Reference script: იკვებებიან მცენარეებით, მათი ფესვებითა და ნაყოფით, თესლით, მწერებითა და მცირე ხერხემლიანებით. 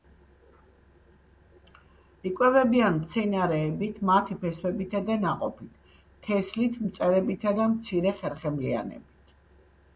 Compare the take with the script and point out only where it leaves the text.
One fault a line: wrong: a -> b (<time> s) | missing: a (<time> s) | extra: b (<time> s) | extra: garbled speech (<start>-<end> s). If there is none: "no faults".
no faults